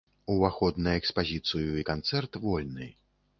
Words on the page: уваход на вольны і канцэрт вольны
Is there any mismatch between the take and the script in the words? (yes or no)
yes